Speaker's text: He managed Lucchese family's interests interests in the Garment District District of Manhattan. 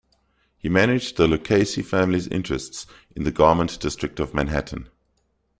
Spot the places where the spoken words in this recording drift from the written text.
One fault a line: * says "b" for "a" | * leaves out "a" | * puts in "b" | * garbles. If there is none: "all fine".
* puts in "the"
* leaves out "interests"
* leaves out "District"